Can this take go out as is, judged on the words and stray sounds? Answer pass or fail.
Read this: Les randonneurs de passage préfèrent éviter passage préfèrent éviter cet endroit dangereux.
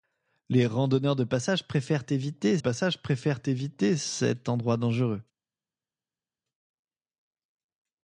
pass